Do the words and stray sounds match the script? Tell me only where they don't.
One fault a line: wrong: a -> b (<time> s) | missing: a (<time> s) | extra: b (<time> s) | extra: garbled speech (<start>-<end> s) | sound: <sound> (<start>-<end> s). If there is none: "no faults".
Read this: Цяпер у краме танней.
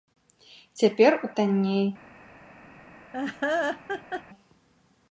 missing: краме (1.3 s)
sound: laugh (3.1-4.2 s)